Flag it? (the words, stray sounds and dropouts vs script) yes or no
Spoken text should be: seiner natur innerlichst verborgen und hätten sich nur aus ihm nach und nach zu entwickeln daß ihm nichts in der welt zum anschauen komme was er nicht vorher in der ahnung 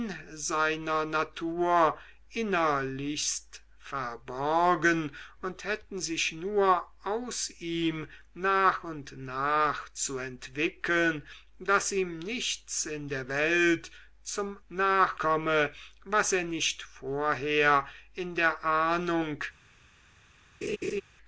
yes